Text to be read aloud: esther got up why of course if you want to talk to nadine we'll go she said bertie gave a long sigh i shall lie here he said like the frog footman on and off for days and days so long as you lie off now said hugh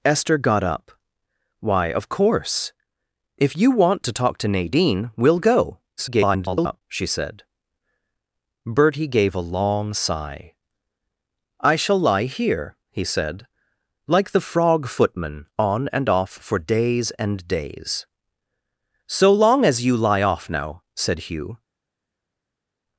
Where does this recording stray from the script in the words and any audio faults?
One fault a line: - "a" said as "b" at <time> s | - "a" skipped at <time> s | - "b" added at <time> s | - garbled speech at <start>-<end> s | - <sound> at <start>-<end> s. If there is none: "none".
- garbled speech at 6.0-6.8 s